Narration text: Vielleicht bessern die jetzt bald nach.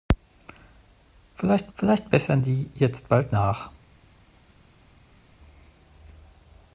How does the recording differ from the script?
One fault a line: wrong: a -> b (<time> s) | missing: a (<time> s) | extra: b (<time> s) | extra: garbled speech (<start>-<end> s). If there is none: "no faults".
extra: vielleicht (1.7 s)